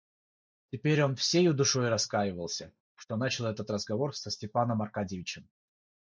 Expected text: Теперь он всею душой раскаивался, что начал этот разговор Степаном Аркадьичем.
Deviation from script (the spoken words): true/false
true